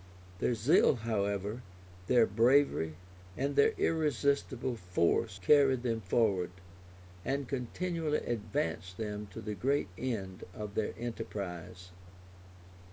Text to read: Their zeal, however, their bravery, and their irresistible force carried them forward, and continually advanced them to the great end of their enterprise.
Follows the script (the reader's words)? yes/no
yes